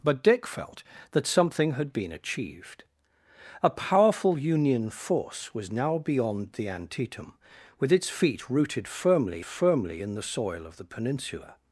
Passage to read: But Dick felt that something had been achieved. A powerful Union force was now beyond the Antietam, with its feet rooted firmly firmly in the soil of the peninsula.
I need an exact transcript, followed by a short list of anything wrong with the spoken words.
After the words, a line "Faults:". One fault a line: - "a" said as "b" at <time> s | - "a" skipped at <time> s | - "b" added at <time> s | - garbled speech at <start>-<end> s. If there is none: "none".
But Dick felt that something had been achieved. A powerful Union force was now beyond the Antietam, with its feet rooted firmly firmly in the soil of the peninsula.
Faults:
none